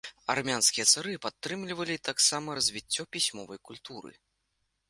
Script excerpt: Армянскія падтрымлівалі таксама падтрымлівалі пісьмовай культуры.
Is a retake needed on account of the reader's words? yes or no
yes